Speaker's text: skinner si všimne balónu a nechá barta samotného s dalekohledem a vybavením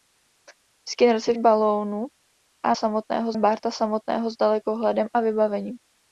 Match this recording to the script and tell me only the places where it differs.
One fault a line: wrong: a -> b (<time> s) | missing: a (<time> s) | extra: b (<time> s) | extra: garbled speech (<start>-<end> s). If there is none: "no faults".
missing: všimne (1.3 s)
wrong: nechá -> samotného (2.7 s)